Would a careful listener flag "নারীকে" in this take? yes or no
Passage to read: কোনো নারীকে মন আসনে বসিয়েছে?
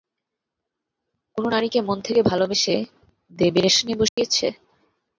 no